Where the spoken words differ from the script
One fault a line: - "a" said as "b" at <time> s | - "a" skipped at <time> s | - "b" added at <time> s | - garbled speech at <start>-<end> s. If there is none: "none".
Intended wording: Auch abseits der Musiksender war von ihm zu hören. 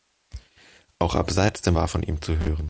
- "Musiksender" skipped at 1.7 s